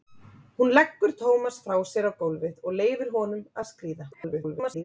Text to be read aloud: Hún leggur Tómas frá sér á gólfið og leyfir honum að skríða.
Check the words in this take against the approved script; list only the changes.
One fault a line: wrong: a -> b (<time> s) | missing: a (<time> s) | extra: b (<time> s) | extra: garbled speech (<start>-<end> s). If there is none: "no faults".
extra: garbled speech (4.1-4.8 s)